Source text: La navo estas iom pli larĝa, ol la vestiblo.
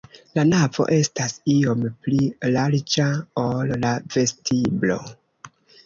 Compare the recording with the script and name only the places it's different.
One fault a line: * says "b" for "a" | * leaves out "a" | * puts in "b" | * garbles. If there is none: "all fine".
all fine